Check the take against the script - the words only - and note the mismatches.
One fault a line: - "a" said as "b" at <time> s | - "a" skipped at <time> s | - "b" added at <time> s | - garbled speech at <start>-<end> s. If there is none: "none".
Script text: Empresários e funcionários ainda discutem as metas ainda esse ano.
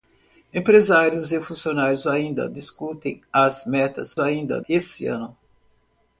none